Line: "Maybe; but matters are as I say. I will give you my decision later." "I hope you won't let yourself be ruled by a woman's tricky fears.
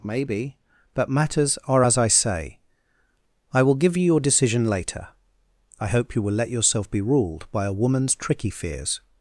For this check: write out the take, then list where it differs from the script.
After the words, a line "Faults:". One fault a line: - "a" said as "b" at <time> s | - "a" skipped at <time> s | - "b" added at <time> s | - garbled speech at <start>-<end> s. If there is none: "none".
"Maybe; but matters are as I say. I will give you your decision later." "I hope you will let yourself be ruled by a woman's tricky fears.
Faults:
- "my" said as "your" at 4.0 s
- "won't" said as "will" at 6.2 s